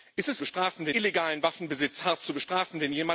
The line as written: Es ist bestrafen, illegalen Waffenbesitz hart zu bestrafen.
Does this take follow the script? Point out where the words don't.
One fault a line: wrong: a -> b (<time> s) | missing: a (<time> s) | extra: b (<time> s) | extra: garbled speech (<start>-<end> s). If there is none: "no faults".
no faults